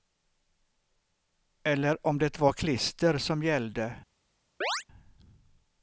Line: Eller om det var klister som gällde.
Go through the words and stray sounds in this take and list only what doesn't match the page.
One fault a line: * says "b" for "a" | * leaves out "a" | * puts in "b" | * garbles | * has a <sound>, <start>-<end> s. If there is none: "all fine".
* has a chirp, 4.6-4.8 s